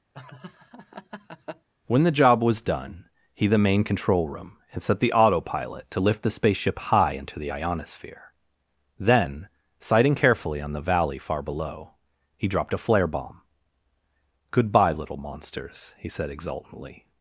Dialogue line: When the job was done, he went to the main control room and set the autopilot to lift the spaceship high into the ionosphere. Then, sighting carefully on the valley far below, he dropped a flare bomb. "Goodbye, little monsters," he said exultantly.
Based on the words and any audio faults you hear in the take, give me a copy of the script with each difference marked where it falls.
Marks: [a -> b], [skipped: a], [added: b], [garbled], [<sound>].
[laugh] When the job was done, he [skipped: went to] the main control room and set the autopilot to lift the spaceship high into the ionosphere. Then, sighting carefully on the valley far below, he dropped a flare bomb. "Goodbye, little monsters," he said exultantly.